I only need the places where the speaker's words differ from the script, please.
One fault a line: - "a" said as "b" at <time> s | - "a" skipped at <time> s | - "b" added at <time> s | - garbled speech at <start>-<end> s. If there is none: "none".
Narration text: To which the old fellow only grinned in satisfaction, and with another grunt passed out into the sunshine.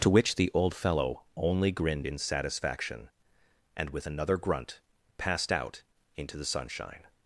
none